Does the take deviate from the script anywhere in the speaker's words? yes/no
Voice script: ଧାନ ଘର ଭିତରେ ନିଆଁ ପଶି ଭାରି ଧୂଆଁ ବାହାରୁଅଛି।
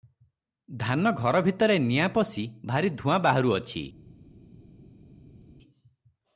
no